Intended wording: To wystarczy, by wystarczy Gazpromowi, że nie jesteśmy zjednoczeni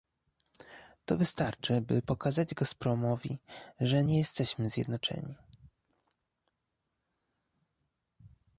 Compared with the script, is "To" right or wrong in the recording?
right